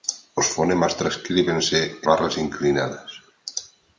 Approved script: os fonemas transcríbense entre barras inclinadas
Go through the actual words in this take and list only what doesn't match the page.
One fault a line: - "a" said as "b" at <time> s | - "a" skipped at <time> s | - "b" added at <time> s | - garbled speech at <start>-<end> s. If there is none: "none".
- "entre" skipped at 1.8 s